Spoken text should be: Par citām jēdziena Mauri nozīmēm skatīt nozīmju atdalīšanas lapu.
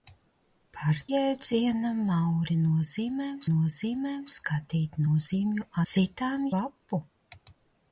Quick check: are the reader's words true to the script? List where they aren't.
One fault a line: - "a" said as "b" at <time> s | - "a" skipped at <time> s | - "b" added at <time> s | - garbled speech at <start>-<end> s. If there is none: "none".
- "citām" skipped at 1.0 s
- "nozīmēm" added at 3.5 s
- "atdalīšanas" said as "citām" at 5.9 s